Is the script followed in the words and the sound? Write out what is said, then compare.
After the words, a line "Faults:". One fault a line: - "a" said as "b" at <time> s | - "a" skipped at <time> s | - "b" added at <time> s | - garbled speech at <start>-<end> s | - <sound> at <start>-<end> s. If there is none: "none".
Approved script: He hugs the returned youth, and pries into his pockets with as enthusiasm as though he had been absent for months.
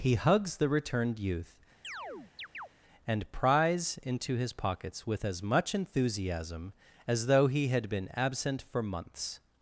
He hugs the returned youth, and pries into his pockets with as much enthusiasm as though he had been absent for months.
Faults:
- chirp at 1.8-2.7 s
- "much" added at 5.4 s